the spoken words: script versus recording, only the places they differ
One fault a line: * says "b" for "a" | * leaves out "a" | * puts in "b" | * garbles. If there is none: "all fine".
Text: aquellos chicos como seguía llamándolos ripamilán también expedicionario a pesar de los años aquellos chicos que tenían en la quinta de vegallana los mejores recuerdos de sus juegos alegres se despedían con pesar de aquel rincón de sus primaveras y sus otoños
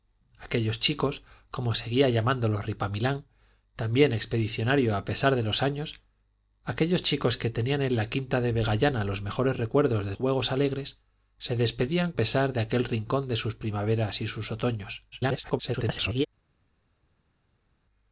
* leaves out "sus"
* leaves out "con"
* garbles